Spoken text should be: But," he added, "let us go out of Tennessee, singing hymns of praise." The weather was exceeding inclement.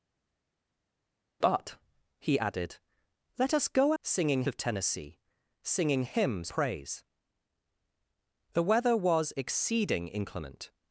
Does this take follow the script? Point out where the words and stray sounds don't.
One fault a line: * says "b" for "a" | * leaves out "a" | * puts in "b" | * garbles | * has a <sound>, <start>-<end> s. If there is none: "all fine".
* says "singing" for "out"
* leaves out "of"